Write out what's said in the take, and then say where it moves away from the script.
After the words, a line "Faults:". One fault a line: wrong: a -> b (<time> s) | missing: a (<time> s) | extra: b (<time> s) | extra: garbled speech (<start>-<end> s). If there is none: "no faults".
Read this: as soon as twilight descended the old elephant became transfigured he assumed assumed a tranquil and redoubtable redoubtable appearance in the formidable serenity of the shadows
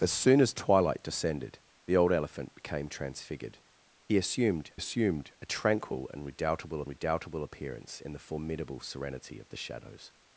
as soon as twilight descended the old elephant became transfigured he assumed assumed a tranquil and redoubtable redoubtable appearance in the formidable serenity of the shadows
Faults:
no faults